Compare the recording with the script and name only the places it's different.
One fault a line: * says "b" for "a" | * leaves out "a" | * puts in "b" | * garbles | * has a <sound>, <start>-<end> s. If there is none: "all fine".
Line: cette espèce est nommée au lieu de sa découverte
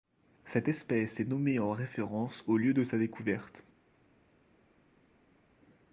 * puts in "en référence"